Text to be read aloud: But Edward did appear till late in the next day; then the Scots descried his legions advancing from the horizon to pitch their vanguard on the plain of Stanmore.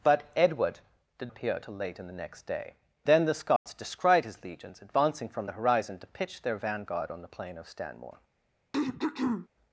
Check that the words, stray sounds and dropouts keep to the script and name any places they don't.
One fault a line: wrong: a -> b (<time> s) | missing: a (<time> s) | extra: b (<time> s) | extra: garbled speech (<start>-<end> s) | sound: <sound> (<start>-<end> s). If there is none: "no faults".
sound: dropout (3.6-3.7 s)
sound: throat clearing (8.7-9.5 s)